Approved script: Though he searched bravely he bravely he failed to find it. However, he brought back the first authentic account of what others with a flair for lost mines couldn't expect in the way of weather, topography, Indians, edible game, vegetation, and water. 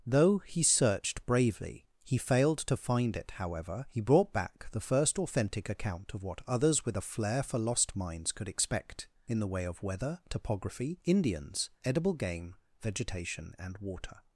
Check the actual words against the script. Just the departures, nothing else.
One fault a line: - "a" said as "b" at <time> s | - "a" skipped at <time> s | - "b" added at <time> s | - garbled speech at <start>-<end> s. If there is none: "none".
- "bravely he" skipped at 2.2 s
- "couldn't" said as "could" at 8.3 s